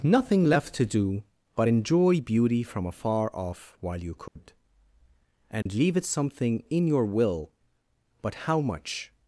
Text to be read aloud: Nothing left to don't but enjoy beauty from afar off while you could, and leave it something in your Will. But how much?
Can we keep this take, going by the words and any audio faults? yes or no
no